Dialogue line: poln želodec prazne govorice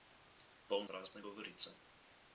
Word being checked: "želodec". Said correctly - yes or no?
no